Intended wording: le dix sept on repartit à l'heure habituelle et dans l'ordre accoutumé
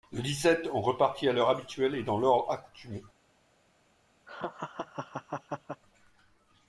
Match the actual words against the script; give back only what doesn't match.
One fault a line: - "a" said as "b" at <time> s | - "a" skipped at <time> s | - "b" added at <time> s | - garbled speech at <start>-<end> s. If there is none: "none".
none